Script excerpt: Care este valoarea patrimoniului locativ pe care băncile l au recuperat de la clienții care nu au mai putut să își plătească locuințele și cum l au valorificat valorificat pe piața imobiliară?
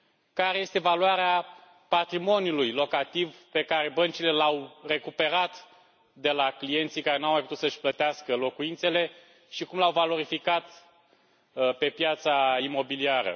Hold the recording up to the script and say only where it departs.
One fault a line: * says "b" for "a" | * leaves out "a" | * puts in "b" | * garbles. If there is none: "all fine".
* leaves out "valorificat"